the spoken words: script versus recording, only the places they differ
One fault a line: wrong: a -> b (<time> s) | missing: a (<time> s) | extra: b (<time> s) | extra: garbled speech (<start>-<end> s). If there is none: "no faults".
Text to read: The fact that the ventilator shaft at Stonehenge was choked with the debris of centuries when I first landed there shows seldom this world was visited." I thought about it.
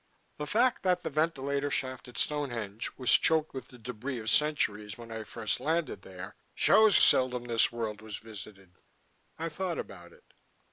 no faults